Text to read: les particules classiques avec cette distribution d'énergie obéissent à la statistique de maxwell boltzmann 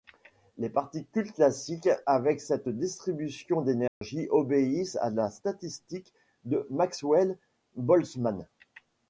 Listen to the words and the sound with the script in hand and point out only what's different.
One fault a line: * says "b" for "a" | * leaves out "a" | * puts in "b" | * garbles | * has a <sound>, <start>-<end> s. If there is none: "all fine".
* has a dropout, 3.9-4.0 s